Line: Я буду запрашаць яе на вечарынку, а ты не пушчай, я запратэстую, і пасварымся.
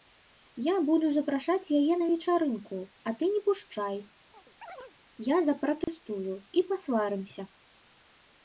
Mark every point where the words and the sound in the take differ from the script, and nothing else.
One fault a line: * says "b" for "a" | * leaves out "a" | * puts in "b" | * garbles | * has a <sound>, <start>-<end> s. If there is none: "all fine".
* has a chirp, 4.3-5.0 s
* has a dropout, 5.8-5.9 s